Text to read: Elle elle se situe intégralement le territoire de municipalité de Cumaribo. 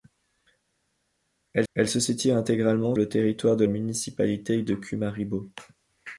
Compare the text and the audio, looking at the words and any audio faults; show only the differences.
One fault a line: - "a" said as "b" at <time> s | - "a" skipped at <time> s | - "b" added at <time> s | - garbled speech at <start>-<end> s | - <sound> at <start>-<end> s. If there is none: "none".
none